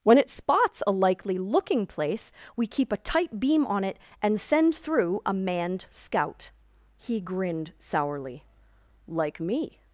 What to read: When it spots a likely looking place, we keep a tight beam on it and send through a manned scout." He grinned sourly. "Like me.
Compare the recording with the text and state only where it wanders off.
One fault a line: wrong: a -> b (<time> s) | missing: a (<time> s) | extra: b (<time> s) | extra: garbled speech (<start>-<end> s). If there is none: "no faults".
no faults